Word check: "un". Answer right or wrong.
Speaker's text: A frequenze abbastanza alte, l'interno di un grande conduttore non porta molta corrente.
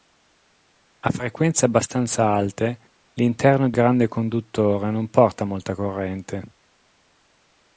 wrong